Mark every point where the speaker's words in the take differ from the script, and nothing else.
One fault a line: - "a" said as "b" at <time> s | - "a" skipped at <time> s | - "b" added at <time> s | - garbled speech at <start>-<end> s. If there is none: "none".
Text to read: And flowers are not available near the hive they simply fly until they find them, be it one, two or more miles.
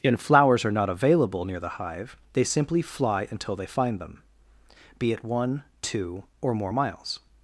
none